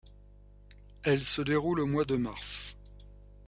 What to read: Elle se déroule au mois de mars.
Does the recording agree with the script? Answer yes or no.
yes